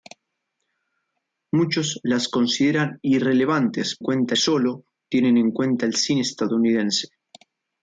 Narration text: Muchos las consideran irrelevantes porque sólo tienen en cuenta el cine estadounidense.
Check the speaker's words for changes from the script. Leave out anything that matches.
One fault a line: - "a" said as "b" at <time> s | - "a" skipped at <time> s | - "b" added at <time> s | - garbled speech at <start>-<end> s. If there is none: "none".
- "porque" said as "cuenta" at 4.0 s